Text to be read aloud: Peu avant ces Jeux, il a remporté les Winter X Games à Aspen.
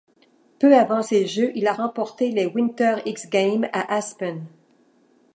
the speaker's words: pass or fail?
pass